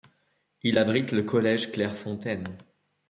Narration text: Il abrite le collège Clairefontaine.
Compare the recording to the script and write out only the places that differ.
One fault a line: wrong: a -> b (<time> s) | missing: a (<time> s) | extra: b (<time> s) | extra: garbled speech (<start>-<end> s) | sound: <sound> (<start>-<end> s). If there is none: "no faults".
no faults